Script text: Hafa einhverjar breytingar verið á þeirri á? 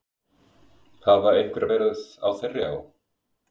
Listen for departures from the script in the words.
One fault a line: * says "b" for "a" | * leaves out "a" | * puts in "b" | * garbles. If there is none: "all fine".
* leaves out "breytingar"